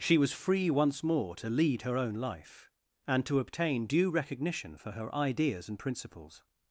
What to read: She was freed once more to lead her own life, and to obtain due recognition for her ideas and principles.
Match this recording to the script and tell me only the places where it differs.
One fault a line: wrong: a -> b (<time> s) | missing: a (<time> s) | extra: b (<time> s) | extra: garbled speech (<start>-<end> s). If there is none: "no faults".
wrong: freed -> free (0.3 s)